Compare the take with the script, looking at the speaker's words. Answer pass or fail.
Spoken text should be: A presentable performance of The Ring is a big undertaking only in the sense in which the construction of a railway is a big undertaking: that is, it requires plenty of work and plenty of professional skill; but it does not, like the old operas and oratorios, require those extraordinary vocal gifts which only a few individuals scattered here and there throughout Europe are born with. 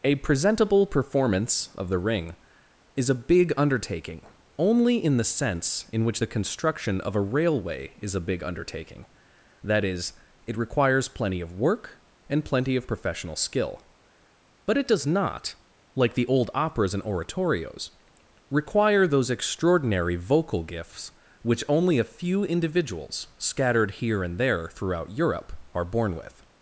pass